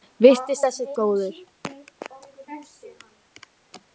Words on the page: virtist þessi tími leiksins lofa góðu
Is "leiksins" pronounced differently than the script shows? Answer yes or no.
yes